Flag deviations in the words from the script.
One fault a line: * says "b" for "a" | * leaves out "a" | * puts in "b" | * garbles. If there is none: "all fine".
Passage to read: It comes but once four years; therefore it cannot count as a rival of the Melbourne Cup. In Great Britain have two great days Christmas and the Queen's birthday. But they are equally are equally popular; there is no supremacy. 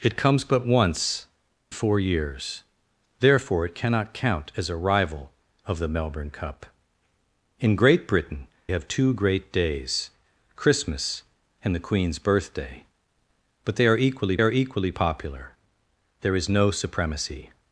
all fine